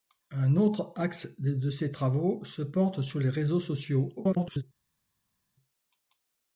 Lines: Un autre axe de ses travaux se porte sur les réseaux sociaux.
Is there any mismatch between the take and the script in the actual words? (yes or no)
yes